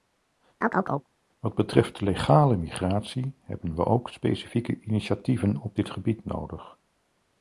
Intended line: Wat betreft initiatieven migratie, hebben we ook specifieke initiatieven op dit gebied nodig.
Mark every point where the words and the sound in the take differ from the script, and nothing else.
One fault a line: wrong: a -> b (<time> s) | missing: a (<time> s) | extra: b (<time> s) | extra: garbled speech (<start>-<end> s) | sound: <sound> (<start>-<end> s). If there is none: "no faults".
sound: chirp (0.6-1.1 s)
wrong: initiatieven -> legale (2.0 s)